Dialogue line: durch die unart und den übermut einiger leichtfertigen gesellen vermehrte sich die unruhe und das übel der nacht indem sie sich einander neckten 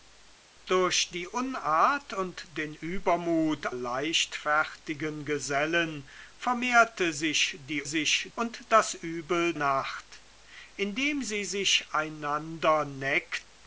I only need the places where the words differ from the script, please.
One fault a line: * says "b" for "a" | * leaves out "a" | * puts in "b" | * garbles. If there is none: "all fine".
* leaves out "einiger"
* says "sich" for "unruhe"
* leaves out "der"